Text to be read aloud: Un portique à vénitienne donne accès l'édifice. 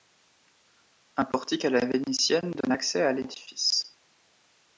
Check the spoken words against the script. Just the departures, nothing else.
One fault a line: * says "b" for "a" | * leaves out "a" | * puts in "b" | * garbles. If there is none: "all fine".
* puts in "la"
* puts in "à"